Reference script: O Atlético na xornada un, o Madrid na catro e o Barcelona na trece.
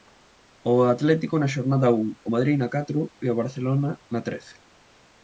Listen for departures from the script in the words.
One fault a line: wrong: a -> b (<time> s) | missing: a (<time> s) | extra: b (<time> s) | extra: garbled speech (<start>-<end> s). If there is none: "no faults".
no faults